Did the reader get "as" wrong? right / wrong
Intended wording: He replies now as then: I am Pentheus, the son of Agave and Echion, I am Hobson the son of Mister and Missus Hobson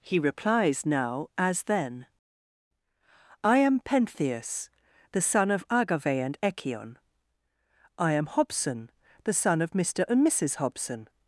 right